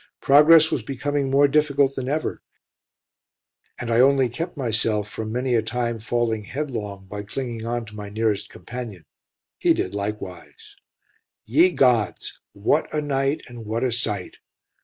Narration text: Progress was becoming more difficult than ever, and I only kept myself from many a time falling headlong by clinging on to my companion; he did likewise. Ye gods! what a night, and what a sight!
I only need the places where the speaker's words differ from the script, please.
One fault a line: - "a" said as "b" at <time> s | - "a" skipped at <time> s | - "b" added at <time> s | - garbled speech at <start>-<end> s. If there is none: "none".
- "nearest" added at 8.1 s